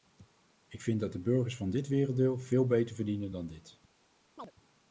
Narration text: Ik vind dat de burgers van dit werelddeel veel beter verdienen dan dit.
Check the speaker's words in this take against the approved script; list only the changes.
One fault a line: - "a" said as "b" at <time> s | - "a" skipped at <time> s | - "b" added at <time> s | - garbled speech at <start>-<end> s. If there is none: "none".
none